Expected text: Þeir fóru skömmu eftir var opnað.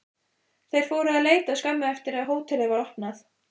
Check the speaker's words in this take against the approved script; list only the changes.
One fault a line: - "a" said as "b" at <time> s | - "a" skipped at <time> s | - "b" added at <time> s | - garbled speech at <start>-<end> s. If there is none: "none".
- "að leita" added at 1.2 s
- "að hótelið" added at 2.2 s